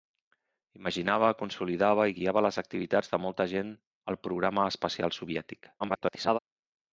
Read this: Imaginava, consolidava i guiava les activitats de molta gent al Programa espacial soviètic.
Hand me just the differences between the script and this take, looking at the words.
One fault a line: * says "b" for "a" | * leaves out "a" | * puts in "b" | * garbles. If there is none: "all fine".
* garbles